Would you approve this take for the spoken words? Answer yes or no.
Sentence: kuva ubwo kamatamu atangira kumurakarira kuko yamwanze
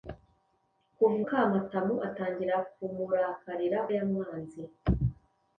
no